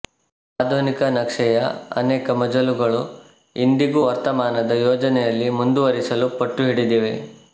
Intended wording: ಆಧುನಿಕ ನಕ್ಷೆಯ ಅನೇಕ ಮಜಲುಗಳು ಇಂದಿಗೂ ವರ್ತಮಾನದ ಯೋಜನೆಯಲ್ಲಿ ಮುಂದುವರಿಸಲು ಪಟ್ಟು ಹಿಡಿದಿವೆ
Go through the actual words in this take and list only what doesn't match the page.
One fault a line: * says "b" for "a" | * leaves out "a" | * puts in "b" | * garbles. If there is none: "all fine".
all fine